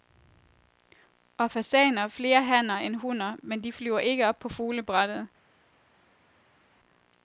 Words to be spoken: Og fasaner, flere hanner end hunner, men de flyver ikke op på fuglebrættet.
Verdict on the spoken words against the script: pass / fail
pass